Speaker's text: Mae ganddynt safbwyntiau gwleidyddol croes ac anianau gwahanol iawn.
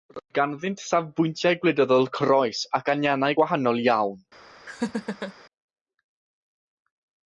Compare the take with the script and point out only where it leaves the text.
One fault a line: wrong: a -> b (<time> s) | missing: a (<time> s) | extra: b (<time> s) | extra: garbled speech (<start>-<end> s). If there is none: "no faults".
wrong: Mae -> Roedd (0.1 s)